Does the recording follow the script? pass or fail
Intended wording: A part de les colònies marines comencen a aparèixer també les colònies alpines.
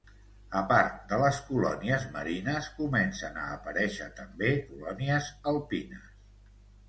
fail